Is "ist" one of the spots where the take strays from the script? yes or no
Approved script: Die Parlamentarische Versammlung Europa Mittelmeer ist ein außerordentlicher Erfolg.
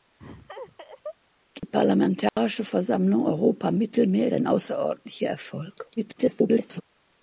yes